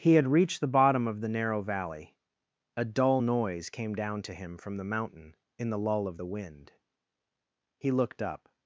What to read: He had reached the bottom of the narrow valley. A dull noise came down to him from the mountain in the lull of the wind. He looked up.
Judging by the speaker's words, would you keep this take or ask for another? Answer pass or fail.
pass